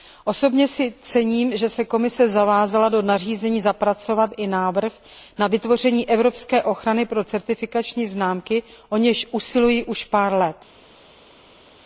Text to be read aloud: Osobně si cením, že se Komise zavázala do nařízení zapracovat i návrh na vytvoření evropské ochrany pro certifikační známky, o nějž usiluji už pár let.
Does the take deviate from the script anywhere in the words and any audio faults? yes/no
no